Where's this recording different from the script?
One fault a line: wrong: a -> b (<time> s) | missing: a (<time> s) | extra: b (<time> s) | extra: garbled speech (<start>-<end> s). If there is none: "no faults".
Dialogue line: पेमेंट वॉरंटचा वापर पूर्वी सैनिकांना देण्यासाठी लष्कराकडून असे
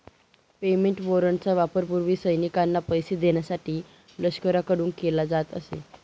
extra: पैसे (2.9 s)
extra: केला जात (5.0 s)